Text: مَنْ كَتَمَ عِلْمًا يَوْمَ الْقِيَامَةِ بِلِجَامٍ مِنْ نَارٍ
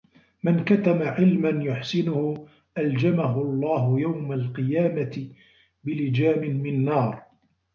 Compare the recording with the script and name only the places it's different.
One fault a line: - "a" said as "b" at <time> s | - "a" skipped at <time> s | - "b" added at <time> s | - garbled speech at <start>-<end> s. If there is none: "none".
- "يُحْسِنُهُ أَلْجَمَهُ اللَّهُ" added at 1.6 s